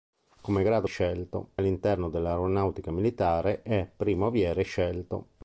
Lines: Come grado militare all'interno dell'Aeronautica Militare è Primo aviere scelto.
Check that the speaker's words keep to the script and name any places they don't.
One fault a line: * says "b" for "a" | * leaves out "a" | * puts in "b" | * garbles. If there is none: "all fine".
* says "scelto" for "militare"